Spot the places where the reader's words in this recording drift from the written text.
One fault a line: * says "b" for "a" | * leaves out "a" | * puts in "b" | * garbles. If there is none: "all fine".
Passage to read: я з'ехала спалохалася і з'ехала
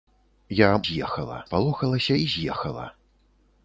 all fine